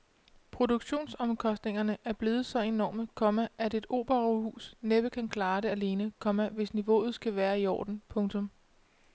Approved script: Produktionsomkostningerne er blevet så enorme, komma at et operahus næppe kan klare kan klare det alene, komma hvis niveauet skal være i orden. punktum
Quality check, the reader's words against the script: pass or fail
fail